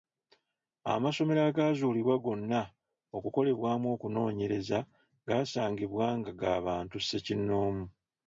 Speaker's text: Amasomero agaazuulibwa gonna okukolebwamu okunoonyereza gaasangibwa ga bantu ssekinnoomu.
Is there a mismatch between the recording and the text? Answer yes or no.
yes